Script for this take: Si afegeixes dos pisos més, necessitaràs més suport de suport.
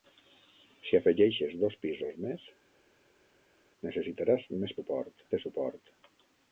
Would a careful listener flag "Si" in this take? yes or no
no